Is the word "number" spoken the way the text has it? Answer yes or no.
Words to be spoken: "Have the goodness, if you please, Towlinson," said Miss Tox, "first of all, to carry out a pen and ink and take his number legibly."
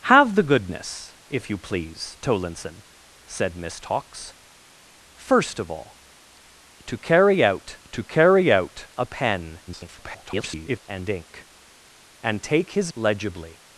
no